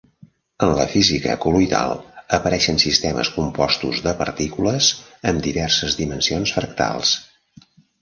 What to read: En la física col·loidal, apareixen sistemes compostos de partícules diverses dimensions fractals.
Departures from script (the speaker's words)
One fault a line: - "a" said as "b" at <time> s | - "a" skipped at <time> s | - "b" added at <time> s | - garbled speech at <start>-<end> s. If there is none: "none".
- "amb" added at 5.3 s